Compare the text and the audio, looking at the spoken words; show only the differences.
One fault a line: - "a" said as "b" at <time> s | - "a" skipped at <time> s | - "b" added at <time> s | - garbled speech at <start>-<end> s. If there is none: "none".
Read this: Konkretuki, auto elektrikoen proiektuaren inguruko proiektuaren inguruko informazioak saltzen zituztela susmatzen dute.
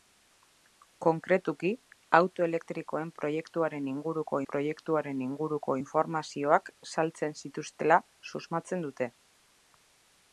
none